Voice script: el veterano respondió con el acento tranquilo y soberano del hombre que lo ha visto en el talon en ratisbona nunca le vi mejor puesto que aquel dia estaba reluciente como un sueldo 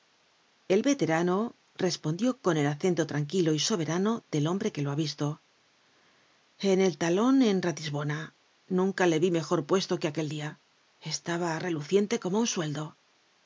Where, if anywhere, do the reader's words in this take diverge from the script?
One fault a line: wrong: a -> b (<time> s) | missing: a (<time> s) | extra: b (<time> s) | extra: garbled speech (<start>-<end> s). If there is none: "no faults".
no faults